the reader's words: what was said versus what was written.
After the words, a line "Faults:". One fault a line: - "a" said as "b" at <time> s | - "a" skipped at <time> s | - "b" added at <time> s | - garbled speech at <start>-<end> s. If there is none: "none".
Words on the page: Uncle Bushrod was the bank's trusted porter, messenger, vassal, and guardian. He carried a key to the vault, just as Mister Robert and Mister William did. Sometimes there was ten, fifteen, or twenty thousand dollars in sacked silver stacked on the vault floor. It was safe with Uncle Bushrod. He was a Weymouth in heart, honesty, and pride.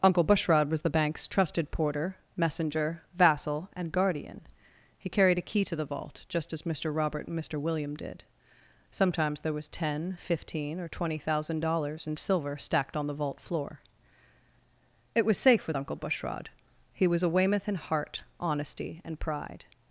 Uncle Bushrod was the bank's trusted porter, messenger, vassal, and guardian. He carried a key to the vault, just as Mister Robert and Mister William did. Sometimes there was ten, fifteen, or twenty thousand dollars in silver stacked on the vault floor. It was safe with Uncle Bushrod. He was a Weymouth in heart, honesty, and pride.
Faults:
- "sacked" skipped at 12.2 s